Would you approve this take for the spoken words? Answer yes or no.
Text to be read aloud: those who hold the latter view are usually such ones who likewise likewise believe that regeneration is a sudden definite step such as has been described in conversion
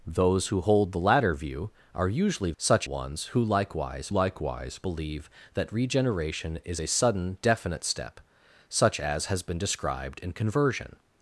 yes